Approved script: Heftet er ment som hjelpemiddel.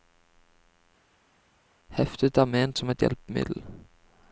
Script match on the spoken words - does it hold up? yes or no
no